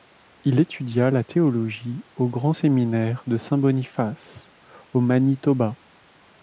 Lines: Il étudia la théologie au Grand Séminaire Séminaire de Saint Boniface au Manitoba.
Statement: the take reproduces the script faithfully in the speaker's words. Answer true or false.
false